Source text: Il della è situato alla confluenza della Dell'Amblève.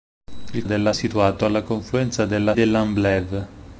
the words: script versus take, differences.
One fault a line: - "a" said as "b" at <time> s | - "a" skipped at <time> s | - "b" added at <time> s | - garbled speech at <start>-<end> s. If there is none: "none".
none